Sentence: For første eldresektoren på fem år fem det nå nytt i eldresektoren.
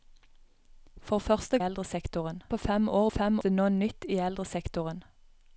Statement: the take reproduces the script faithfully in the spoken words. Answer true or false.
true